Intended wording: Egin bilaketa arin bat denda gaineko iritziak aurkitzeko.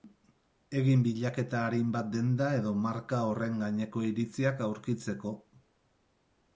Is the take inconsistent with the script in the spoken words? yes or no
yes